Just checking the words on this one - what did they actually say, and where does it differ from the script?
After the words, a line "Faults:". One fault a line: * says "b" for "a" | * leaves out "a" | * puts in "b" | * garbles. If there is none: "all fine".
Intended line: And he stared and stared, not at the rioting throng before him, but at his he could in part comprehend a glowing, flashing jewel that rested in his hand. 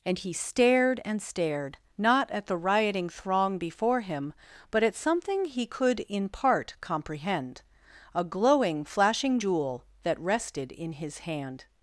And he stared and stared, not at the rioting throng before him, but at something he could in part comprehend a glowing, flashing jewel that rested in his hand.
Faults:
* says "something" for "his"